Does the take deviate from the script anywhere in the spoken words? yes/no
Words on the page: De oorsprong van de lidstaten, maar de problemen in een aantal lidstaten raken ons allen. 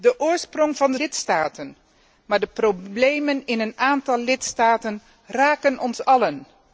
no